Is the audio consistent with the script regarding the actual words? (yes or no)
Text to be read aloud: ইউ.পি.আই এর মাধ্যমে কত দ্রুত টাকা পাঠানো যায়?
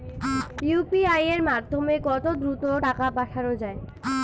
yes